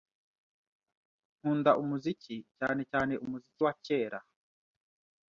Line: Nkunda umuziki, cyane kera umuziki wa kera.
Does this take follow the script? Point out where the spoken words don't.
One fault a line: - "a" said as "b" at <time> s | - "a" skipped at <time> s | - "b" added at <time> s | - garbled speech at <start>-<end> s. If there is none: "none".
- "kera" said as "cyane" at 2.9 s